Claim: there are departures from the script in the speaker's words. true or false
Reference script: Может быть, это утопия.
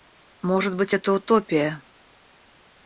false